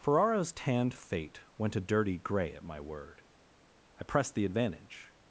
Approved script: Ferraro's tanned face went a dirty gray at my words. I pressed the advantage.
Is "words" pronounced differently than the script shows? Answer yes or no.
yes